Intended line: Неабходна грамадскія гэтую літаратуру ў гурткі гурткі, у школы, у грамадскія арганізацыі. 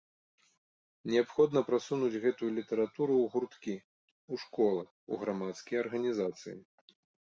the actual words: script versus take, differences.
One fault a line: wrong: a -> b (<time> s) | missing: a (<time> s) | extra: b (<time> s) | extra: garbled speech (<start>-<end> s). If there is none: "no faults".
wrong: грамадскія -> прасунуць (1.7 s)
missing: гурткі (3.7 s)